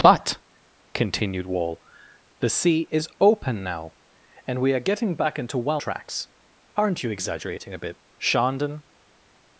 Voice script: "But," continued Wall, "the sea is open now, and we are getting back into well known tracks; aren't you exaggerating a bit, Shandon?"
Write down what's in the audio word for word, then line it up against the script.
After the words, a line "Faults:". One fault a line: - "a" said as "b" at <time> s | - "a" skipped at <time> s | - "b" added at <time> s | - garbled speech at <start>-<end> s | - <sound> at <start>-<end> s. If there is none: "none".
"But," continued Wall, "the sea is open now, and we are getting back into well tracks; aren't you exaggerating a bit, Shandon?"
Faults:
- "known" skipped at 5.8 s